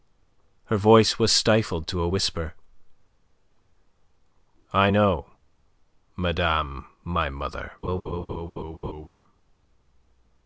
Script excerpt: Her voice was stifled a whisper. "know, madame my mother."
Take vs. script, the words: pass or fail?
fail